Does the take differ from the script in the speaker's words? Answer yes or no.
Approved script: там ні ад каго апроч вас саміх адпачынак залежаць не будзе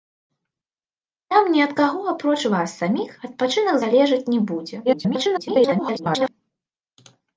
yes